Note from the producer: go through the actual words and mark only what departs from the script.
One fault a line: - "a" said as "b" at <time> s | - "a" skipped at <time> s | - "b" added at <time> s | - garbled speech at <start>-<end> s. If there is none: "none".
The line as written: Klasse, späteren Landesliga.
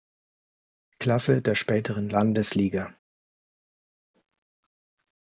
- "der" added at 1.4 s